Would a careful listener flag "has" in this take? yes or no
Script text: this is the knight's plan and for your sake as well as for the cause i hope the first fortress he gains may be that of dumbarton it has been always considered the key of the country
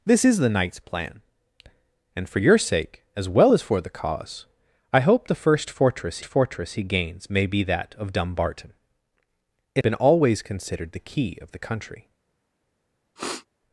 yes